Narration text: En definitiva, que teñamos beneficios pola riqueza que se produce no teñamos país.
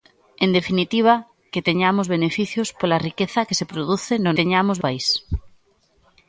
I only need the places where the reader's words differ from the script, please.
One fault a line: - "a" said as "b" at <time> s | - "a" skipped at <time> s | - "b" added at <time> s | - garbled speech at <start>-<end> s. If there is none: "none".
none